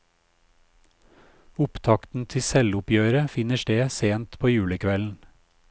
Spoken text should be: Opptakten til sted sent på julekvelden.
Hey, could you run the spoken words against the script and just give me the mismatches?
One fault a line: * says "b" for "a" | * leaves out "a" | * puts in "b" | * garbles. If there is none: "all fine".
* puts in "selvoppgjøret finner"